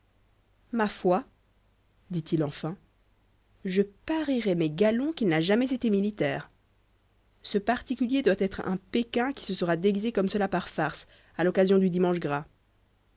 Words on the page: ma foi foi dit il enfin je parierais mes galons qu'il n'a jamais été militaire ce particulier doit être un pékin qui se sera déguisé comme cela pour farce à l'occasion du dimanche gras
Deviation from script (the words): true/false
true